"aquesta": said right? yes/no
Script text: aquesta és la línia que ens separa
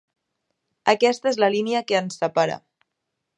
yes